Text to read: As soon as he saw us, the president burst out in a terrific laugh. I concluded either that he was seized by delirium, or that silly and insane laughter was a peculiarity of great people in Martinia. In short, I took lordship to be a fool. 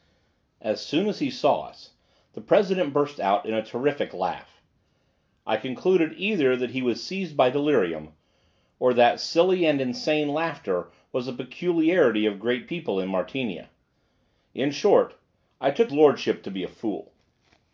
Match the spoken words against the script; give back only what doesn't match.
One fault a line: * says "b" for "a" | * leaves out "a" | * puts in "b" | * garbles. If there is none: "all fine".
all fine